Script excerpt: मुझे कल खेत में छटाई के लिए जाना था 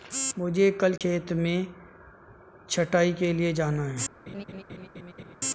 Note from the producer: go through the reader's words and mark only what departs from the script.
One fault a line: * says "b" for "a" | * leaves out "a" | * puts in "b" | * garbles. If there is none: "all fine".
* says "है" for "था"